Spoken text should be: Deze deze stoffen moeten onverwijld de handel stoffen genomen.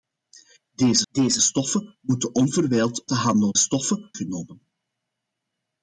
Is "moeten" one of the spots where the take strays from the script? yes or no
no